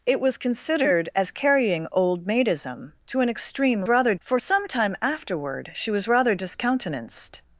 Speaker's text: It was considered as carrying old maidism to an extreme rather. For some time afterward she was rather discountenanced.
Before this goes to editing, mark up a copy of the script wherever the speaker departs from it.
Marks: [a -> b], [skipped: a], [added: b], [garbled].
It was considered as carrying old maidism to an extreme rather. For some time afterward she was rather discountenanced.